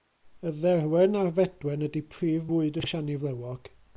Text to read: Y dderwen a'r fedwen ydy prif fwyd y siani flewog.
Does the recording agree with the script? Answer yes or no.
yes